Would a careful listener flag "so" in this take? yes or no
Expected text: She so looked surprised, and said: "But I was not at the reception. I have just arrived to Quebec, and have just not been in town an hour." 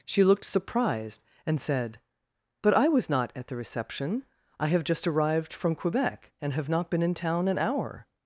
yes